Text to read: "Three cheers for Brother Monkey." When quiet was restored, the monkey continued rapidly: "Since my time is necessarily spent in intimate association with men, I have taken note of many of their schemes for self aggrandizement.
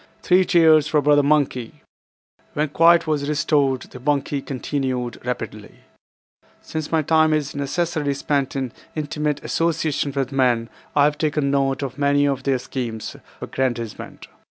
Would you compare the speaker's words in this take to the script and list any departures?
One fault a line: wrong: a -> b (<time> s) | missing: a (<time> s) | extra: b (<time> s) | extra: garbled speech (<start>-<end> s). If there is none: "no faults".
missing: for self (13.2 s)